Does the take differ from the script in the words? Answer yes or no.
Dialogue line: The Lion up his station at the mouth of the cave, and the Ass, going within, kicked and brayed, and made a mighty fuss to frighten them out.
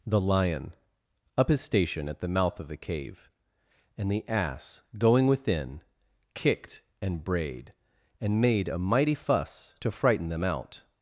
no